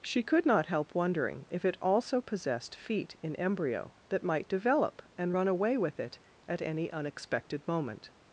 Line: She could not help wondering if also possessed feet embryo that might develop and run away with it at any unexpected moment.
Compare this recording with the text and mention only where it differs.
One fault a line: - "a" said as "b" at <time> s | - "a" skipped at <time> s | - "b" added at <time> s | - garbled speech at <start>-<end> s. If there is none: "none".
- "it" added at 1.6 s
- "in" added at 3.2 s